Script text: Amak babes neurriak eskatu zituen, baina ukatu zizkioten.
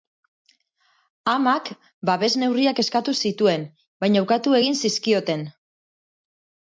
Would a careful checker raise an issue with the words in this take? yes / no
yes